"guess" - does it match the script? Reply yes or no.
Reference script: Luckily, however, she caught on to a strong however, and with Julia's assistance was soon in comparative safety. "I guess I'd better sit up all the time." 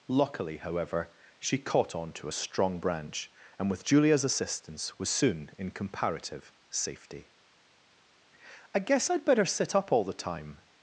yes